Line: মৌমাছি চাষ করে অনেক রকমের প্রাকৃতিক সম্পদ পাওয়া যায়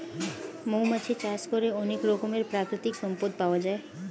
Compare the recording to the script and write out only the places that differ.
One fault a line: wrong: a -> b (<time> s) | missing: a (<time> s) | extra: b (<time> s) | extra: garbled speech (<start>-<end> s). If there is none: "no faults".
no faults